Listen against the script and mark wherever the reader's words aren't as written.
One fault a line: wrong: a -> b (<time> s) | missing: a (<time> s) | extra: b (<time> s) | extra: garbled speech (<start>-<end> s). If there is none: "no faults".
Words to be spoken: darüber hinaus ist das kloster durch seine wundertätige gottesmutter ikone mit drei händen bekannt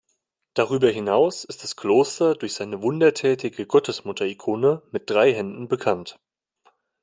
no faults